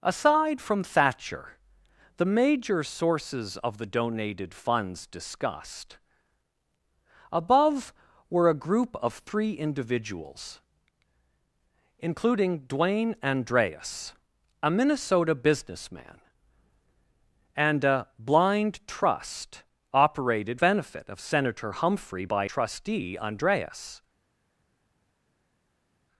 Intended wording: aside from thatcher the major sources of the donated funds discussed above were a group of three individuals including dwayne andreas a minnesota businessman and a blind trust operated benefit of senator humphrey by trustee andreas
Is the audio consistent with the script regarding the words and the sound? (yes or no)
yes